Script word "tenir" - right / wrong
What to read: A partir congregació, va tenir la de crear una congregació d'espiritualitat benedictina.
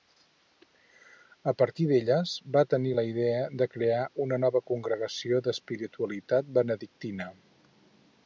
right